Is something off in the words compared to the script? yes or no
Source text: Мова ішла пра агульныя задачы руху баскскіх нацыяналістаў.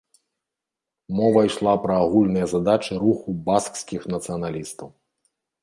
no